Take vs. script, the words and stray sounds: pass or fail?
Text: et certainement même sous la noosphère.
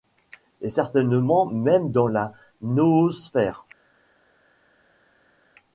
fail